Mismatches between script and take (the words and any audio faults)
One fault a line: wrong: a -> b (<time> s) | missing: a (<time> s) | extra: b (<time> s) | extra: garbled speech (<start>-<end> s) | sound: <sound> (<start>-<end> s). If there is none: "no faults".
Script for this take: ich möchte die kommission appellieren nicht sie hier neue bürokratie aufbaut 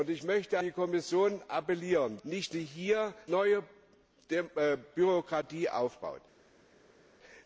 no faults